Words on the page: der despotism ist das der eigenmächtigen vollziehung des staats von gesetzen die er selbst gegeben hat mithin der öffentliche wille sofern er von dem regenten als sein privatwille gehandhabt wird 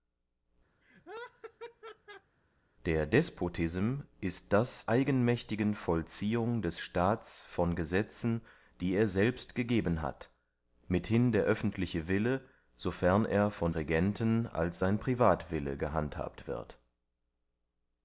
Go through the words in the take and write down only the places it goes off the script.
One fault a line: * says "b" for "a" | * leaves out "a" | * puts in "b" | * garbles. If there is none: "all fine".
* leaves out "der"
* leaves out "dem"